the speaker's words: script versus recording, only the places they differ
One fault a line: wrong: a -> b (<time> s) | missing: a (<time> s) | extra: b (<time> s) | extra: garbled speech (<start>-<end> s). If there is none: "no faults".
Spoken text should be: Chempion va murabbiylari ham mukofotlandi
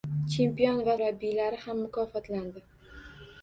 no faults